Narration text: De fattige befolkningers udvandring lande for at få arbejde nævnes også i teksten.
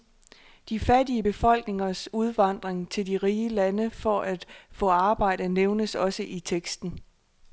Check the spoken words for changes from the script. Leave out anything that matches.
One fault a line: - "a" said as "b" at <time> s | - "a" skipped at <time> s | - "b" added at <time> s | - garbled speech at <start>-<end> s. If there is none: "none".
- "til de rige" added at 2.9 s